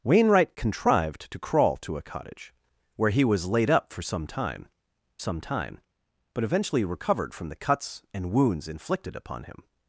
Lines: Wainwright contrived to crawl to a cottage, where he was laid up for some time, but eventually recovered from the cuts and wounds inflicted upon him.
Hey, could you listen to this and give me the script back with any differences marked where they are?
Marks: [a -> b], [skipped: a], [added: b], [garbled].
Wainwright contrived to crawl to a cottage, where he was laid up for some time, [added: some time] but eventually recovered from the cuts and wounds inflicted upon him.